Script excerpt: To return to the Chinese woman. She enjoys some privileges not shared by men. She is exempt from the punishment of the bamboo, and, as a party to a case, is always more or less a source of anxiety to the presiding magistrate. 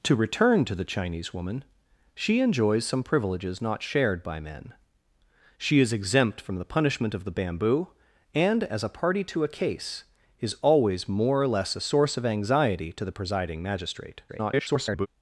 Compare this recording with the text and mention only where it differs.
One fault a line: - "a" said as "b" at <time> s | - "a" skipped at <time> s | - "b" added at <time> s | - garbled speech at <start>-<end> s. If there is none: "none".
- garbled speech at 14.3-15.1 s